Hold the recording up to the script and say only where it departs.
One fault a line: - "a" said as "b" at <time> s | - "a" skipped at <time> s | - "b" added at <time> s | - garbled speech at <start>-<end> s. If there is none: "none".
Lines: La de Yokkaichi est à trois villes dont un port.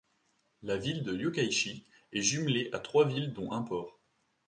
- "ville" added at 0.8 s
- "jumelée" added at 2.2 s